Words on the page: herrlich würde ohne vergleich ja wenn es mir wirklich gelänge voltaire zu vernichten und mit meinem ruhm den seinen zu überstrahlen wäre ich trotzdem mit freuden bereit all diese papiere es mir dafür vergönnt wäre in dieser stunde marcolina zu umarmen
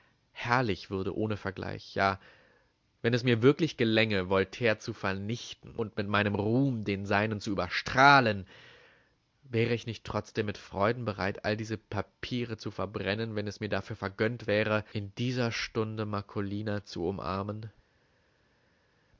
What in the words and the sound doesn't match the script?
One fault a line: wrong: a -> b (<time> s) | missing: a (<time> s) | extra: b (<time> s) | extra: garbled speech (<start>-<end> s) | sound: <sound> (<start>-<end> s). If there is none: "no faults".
extra: nicht (9.9 s)
extra: zu verbrennen wenn (12.6 s)